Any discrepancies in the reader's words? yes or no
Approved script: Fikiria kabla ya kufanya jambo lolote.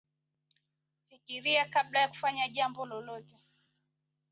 no